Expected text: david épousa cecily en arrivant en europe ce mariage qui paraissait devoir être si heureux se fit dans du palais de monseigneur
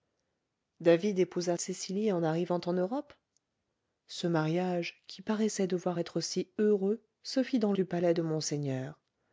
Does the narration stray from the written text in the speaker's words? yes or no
no